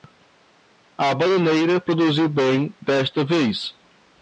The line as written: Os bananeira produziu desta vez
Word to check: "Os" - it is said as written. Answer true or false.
false